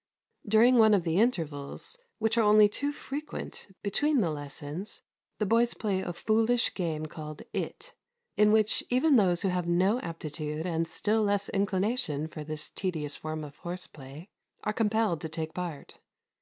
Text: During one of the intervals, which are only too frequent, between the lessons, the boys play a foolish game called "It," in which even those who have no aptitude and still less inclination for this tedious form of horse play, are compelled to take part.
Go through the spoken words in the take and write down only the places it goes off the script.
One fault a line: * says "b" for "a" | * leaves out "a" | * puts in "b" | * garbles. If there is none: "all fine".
all fine